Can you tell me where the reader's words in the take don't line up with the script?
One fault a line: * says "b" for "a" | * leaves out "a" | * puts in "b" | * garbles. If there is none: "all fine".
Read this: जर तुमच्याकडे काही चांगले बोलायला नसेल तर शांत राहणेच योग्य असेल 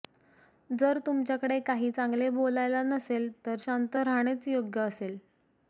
all fine